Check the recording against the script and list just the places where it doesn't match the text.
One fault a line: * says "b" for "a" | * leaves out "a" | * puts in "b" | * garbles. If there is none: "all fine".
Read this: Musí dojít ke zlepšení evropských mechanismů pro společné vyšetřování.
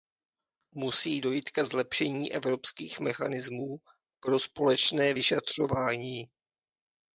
all fine